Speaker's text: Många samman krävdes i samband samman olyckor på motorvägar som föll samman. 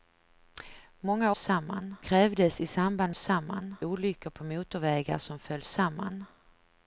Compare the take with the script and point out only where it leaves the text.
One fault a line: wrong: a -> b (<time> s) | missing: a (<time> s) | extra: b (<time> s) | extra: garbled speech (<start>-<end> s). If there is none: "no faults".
no faults